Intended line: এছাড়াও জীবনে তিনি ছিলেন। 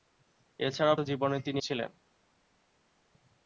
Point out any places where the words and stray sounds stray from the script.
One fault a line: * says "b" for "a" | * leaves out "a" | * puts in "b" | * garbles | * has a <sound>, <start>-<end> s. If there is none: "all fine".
all fine